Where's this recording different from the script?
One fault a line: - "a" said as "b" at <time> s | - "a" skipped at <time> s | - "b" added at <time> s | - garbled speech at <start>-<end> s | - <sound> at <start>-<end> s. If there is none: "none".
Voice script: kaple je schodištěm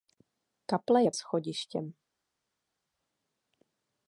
none